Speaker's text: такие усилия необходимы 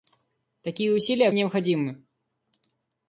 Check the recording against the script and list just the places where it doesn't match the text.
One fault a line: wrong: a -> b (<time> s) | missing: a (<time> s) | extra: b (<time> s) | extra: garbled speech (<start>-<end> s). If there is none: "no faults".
no faults